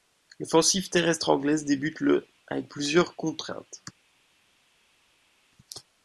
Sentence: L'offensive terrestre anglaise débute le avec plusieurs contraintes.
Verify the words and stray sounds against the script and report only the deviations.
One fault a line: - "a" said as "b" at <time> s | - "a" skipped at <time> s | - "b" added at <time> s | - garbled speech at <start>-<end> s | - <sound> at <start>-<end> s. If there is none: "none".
none